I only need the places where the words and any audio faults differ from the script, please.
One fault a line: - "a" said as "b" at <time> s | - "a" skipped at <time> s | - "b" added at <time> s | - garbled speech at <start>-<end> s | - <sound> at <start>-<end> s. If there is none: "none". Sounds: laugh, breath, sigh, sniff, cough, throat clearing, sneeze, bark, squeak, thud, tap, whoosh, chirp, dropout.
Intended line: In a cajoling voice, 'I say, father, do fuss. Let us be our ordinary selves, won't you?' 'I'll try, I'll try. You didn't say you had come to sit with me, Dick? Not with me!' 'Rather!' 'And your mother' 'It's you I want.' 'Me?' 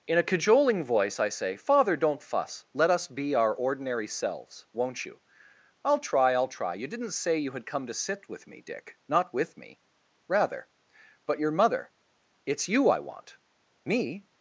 - "do" said as "don't" at 1.9 s
- "And" said as "But" at 11.3 s